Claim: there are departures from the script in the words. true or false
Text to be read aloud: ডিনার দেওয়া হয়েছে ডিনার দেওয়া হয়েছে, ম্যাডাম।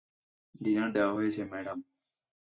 true